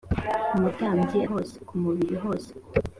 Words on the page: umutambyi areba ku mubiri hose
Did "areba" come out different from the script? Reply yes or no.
yes